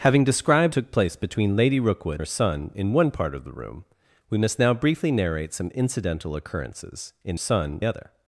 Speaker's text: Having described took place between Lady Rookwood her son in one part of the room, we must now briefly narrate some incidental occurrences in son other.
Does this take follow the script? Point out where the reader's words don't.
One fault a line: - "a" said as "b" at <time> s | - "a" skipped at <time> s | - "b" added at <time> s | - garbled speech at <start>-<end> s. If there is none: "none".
none